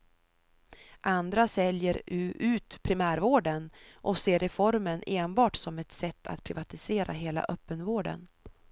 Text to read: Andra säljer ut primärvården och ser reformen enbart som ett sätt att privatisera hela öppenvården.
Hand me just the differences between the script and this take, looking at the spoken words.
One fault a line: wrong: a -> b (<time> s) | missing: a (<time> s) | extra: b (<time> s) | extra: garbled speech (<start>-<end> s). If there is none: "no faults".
no faults